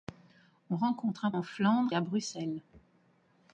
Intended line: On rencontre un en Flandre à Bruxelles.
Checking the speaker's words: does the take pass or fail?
pass